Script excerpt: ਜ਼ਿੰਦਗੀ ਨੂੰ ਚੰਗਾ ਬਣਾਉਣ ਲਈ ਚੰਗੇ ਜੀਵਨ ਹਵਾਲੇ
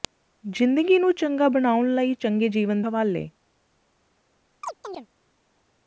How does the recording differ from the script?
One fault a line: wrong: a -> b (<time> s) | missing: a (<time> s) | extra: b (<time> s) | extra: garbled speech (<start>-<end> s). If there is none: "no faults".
no faults